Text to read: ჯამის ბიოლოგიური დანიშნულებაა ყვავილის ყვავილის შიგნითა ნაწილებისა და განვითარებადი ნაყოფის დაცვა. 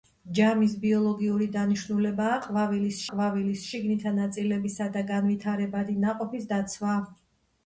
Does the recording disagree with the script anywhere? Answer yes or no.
no